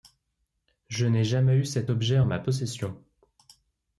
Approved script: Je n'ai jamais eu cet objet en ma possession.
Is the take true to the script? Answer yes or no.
yes